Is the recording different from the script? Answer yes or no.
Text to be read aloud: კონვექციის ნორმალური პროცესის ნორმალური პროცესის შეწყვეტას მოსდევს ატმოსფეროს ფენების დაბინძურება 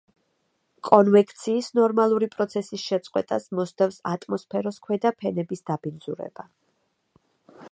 yes